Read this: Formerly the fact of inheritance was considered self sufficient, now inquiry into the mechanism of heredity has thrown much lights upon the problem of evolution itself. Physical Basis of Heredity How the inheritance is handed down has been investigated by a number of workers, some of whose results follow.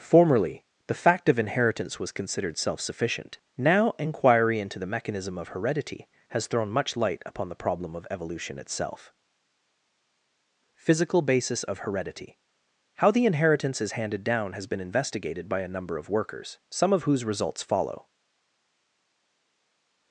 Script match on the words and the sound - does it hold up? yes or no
no